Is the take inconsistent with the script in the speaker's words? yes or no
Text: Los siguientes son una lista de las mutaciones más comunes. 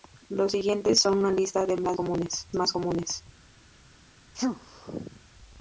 yes